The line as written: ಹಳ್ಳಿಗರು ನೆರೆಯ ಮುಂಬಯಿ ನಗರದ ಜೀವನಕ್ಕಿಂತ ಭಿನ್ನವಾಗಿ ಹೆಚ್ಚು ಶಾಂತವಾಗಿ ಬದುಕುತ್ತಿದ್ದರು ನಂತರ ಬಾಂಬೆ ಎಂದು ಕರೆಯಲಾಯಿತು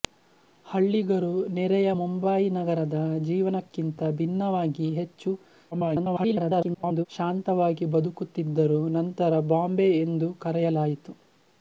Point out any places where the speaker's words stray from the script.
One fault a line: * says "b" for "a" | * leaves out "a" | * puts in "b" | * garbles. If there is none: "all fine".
* garbles